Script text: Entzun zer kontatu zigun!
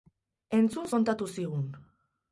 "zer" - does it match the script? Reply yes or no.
no